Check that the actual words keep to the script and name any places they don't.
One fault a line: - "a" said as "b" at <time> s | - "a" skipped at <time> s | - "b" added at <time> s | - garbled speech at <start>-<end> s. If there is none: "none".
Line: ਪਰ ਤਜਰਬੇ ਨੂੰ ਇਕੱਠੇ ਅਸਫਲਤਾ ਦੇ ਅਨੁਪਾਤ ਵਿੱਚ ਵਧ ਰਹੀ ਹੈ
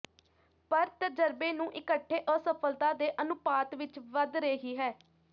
none